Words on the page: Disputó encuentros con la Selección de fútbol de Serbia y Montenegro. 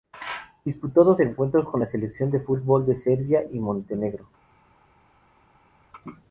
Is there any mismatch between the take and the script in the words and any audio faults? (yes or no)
yes